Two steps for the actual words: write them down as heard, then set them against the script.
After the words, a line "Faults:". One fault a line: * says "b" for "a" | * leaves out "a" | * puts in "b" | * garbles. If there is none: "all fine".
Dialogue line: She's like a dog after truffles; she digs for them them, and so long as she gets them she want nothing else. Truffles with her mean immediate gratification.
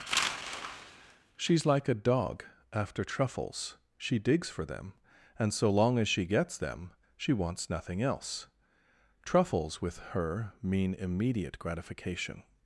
She's like a dog after truffles; she digs for them, and so long as she gets them she wants nothing else. Truffles with her mean immediate gratification.
Faults:
* leaves out "them"
* says "wants" for "want"